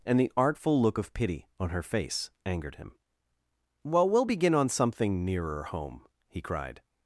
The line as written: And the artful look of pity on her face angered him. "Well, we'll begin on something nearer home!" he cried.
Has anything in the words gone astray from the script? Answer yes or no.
no